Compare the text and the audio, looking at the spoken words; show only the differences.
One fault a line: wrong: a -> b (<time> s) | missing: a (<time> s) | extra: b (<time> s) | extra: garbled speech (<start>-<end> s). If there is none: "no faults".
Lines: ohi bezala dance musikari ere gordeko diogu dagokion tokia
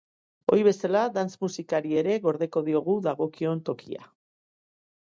no faults